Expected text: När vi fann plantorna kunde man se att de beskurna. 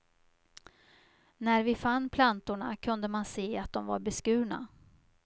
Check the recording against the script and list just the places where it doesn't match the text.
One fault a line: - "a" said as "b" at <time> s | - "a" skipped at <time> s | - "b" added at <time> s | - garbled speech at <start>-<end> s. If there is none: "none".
- "var" added at 3.9 s